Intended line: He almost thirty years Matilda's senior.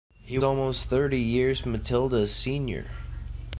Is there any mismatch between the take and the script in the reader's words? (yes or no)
no